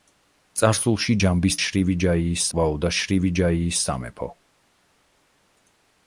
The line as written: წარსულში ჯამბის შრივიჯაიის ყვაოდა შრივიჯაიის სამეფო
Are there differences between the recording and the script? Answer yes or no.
no